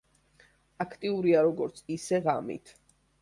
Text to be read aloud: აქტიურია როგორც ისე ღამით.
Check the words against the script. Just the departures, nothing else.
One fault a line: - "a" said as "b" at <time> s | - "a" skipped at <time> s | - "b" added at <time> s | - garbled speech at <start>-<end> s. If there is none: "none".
none